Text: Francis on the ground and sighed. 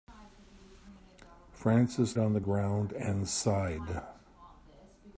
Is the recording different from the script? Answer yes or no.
no